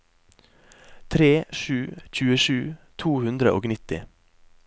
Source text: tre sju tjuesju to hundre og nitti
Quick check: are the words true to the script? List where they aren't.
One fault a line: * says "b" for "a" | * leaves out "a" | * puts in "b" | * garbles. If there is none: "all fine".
all fine